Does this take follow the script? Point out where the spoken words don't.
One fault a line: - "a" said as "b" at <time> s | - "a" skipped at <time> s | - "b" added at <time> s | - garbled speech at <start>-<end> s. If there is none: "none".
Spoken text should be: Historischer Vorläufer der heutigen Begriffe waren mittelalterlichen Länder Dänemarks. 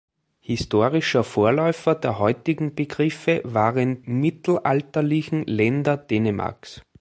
none